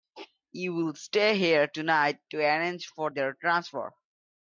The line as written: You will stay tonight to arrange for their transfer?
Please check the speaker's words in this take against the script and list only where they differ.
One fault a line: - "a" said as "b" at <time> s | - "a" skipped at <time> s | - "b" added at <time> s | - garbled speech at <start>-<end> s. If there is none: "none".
- "here" added at 1.4 s